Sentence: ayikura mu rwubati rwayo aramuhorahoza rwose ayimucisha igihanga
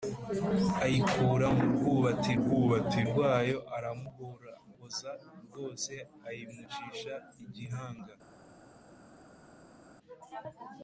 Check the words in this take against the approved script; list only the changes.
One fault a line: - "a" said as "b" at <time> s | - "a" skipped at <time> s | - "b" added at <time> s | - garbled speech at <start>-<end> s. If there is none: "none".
- "rwubati" added at 2.4 s